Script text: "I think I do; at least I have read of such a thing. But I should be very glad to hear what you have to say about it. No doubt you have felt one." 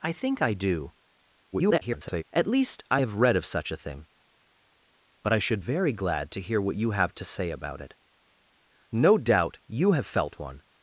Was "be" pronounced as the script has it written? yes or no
no